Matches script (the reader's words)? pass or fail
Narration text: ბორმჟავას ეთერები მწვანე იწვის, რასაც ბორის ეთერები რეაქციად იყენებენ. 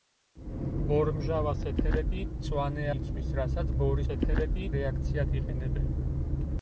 pass